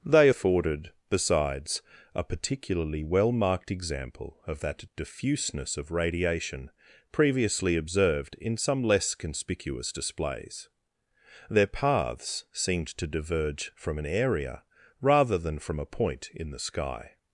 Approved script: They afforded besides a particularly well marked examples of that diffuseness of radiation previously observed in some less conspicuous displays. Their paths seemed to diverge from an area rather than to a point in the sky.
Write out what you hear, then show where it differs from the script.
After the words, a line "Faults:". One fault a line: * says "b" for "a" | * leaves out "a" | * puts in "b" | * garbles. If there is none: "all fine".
They afforded besides a particularly well marked example of that diffuseness of radiation previously observed in some less conspicuous displays. Their paths seemed to diverge from an area rather than from a point in the sky.
Faults:
* says "example" for "examples"
* says "from" for "to"